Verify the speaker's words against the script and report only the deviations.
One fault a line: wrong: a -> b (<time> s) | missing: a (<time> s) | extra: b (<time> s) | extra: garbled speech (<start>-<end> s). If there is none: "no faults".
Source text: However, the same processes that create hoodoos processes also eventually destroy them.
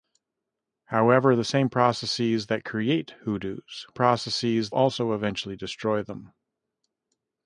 no faults